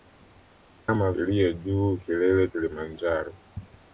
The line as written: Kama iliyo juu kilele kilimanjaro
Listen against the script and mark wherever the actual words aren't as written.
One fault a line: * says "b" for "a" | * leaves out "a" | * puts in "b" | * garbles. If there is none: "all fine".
all fine